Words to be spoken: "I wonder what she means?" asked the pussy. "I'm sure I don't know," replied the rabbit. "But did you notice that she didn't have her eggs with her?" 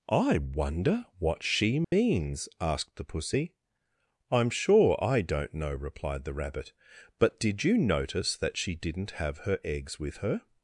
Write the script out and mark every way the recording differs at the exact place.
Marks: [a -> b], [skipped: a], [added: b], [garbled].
"I wonder what she means?" asked the pussy. "I'm sure I don't know," replied the rabbit. "But did you notice that she didn't have her eggs with her?"